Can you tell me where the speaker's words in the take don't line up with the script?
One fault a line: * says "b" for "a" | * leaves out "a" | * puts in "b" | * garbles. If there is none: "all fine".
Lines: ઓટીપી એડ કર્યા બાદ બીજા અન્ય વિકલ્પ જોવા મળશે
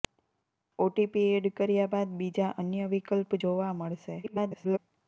* garbles